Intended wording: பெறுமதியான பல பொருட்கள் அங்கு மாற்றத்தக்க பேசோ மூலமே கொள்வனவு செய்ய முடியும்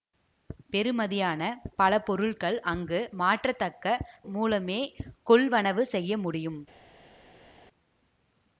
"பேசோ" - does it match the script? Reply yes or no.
no